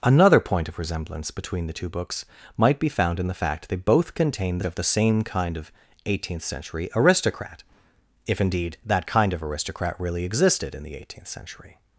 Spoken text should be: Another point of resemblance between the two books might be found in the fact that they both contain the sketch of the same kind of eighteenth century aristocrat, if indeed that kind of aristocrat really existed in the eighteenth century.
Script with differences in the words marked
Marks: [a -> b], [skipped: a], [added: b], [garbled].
Another point of resemblance between the two books might be found in the fact [skipped: that] they both contain the [skipped: sketch] of the same kind of eighteenth century aristocrat, if indeed that kind of aristocrat really existed in the eighteenth century.